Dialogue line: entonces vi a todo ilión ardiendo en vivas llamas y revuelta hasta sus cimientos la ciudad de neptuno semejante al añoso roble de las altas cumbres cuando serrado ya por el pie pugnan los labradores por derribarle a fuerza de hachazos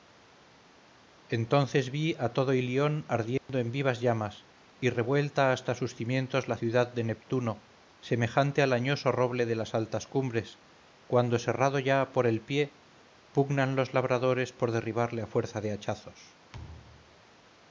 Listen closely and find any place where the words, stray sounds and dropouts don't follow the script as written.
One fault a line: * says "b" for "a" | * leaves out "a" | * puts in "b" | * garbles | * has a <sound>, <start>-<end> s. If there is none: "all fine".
* has a dropout, 3.4-3.5 s
* has a thud, 16.5-17.2 s